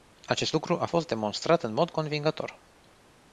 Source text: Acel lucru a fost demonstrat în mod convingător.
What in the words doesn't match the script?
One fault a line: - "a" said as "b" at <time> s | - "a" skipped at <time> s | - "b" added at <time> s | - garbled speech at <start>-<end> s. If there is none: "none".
- "Acel" said as "Acest" at 0.2 s